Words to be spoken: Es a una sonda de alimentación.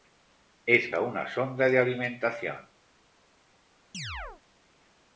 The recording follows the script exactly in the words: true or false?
true